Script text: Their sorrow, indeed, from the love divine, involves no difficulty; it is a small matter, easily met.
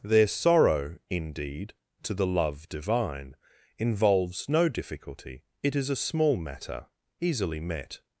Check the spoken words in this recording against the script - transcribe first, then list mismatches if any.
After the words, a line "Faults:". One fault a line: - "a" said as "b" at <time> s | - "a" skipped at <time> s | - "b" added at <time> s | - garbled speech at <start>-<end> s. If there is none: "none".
Their sorrow, indeed, to the love divine, involves no difficulty; it is a small matter, easily met.
Faults:
- "from" said as "to" at 2.0 s